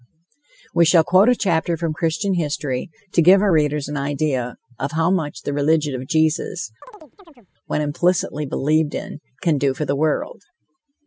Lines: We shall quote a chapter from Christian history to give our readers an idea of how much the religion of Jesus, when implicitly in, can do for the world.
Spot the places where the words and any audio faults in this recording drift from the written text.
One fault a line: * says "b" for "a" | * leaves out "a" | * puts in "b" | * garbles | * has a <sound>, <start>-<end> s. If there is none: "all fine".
* has a chirp, 6.8-7.5 s
* puts in "believed"